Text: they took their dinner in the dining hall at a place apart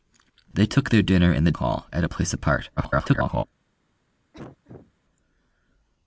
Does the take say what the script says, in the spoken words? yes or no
no